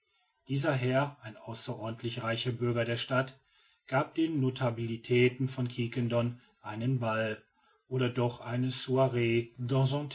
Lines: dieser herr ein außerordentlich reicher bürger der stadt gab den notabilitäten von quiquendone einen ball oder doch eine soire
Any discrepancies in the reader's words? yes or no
no